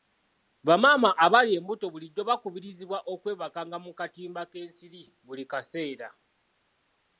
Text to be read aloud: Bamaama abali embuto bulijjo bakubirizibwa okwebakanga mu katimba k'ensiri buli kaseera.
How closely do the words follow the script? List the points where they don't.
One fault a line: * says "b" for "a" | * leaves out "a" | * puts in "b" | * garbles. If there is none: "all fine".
all fine